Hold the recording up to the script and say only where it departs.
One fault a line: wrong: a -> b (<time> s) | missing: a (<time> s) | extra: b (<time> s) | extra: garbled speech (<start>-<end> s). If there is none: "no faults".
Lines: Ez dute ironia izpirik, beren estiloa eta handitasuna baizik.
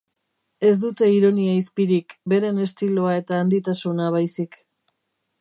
no faults